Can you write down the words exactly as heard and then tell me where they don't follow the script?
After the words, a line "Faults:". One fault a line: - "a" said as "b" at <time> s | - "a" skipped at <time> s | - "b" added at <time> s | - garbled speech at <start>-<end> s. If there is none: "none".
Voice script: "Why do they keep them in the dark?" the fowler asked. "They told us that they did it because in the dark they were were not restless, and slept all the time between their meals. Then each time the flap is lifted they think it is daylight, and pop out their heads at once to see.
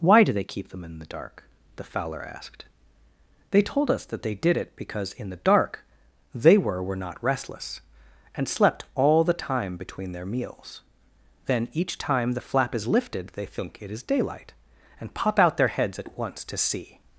"Why do they keep them in the dark?" the fowler asked. "They told us that they did it because in the dark they were were not restless, and slept all the time between their meals. Then each time the flap is lifted they think it is daylight, and pop out their heads at once to see.
Faults:
none